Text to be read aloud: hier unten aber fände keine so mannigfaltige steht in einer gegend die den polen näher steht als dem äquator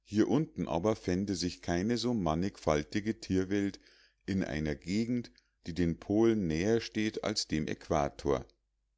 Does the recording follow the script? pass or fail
fail